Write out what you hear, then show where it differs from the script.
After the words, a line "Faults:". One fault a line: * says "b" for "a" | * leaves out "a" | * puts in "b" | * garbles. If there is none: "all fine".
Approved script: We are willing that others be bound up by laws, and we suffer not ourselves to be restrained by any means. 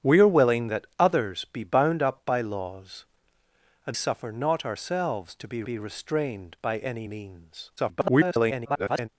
We are willing that others be bound up by laws, and suffer not ourselves to be be restrained by any means. [garbled]
Faults:
* leaves out "we"
* puts in "be"
* garbles